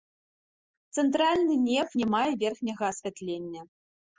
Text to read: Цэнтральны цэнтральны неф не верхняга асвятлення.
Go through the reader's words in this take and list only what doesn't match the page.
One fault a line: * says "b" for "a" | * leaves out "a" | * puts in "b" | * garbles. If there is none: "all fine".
* leaves out "цэнтральны"
* puts in "мае"